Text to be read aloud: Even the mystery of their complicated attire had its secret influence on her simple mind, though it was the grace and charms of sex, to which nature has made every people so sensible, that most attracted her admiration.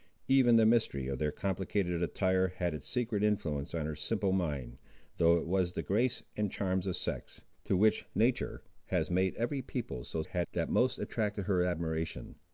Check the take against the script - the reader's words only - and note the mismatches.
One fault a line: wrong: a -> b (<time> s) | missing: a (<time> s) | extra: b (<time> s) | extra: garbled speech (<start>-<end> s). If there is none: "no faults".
wrong: sensible -> had (10.2 s)